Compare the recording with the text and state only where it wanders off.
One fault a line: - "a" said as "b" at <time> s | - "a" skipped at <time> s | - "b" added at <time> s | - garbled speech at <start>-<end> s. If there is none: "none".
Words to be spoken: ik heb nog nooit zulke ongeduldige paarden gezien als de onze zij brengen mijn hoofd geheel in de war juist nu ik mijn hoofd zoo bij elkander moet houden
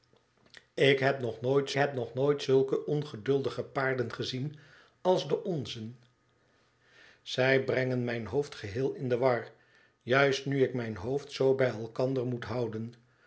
- "heb nog nooit" added at 1.7 s